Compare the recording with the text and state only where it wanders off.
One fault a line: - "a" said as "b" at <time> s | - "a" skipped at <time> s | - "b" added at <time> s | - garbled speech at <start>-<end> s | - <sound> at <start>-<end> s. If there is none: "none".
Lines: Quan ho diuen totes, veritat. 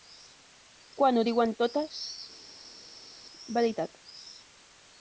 none